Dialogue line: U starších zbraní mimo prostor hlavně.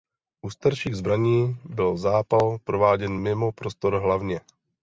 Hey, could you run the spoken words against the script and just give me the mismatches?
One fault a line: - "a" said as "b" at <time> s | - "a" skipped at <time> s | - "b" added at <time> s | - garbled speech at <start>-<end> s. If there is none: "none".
- "byl zápal prováděn" added at 1.6 s